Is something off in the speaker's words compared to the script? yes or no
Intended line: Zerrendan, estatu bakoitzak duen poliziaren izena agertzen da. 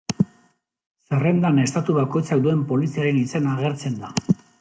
no